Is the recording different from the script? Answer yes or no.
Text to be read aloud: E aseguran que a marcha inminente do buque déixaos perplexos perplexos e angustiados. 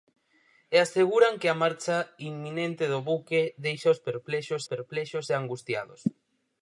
no